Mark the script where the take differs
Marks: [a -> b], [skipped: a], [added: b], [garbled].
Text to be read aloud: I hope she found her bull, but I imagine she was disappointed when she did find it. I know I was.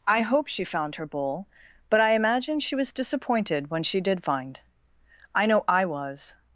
I hope she found her bull, but I imagine she was disappointed when she did find [skipped: it.] I know I was.